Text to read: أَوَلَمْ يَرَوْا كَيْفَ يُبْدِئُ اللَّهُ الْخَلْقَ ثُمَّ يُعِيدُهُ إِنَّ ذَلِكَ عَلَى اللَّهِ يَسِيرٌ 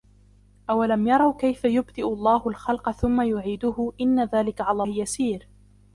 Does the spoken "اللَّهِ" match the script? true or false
false